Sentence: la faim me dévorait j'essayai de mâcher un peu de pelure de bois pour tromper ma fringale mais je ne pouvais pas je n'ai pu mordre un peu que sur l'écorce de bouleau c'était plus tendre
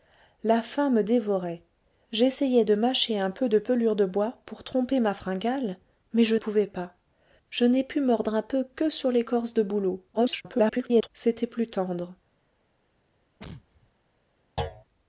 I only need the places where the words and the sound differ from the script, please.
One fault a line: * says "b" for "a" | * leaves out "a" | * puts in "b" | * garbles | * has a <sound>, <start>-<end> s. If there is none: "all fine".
* leaves out "ne"
* garbles
* has a sneeze, 13.4-13.9 s
* has a thud, 14.6-14.8 s